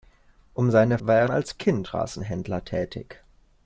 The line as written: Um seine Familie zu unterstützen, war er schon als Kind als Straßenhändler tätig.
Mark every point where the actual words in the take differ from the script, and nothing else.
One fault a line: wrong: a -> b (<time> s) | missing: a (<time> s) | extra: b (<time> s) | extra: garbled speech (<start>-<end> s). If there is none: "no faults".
missing: Familie zu unterstützen (1.0 s)
missing: schon (1.3 s)
missing: als (1.9 s)